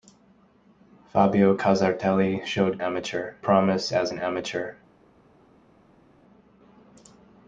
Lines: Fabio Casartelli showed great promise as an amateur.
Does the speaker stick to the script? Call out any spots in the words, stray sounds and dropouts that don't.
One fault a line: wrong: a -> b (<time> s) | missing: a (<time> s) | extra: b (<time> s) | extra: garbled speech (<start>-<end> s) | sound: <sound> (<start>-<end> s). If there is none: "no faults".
wrong: great -> amateur (2.8 s)